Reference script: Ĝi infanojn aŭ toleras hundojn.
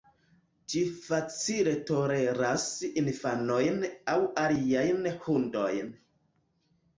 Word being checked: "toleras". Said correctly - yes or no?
no